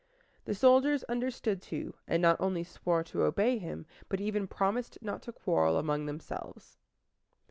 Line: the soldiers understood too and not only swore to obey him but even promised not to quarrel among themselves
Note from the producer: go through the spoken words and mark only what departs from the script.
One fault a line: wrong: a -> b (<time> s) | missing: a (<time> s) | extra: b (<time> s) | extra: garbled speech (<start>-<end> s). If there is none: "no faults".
no faults